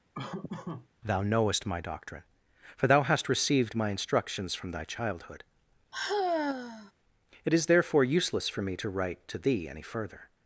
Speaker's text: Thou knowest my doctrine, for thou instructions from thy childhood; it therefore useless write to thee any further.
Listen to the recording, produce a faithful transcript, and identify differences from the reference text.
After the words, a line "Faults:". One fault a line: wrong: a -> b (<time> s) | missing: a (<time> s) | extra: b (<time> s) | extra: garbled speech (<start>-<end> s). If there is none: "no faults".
Thou knowest my doctrine, for thou hast received my instructions from thy childhood; it is therefore useless for me to write to thee any further.
Faults:
extra: hast received my (3.0 s)
extra: is (7.5 s)
extra: for me to (8.5 s)